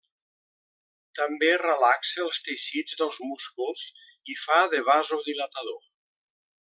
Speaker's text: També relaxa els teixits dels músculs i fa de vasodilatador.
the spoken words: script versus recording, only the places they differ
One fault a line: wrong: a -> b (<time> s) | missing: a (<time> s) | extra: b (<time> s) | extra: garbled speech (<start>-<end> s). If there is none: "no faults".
no faults